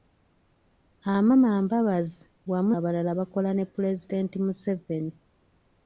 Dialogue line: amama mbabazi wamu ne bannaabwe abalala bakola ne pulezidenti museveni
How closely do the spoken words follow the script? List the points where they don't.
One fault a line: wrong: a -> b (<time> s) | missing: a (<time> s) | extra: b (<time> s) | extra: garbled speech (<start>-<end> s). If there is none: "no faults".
missing: ne bannaabwe (2.7 s)